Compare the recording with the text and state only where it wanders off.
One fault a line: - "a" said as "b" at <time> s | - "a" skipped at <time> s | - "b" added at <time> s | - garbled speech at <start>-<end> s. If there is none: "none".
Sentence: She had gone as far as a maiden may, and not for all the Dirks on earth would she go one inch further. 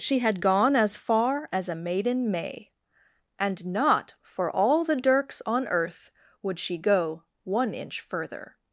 none